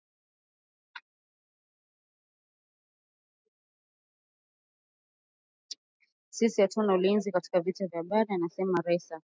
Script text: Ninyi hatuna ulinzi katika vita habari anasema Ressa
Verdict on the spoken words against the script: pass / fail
fail